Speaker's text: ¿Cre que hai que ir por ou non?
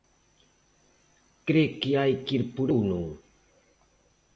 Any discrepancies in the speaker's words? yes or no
no